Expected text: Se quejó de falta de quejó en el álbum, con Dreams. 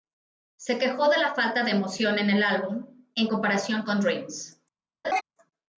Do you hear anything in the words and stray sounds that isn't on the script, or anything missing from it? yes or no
yes